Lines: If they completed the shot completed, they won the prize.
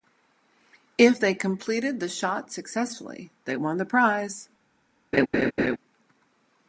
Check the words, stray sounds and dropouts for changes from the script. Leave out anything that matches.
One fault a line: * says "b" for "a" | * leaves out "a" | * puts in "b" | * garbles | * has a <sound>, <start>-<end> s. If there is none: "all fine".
* says "successfully" for "completed"
* has a laugh, 5.1-5.8 s